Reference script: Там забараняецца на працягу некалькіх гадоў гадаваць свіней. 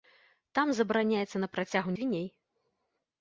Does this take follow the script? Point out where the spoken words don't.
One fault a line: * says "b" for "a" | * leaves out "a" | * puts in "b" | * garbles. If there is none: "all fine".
* leaves out "некалькіх гадоў гадаваць"